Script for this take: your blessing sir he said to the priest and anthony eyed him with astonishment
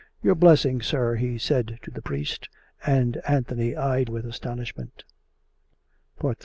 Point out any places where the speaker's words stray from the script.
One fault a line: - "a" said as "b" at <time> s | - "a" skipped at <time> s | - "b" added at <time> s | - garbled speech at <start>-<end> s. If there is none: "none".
- "him" skipped at 4.1 s